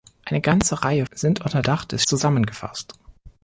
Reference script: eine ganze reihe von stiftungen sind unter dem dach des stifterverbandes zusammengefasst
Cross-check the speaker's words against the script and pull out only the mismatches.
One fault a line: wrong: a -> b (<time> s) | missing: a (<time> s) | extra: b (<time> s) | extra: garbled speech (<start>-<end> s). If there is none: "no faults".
missing: von stiftungen (1.1 s)
missing: dem (1.6 s)
missing: stifterverbandes (2.1 s)